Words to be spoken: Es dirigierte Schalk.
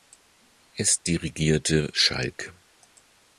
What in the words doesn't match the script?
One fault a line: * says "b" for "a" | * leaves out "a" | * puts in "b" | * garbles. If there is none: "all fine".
all fine